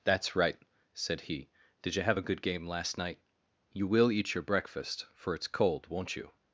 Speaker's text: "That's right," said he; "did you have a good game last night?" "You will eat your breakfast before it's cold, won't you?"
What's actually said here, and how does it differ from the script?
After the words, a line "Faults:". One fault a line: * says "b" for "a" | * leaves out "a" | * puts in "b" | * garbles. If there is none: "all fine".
"That's right," said he; "did you have a good game last night?" "You will eat your breakfast for it's cold, won't you?"
Faults:
* says "for" for "before"